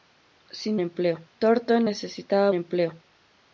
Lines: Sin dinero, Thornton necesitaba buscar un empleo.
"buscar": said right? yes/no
no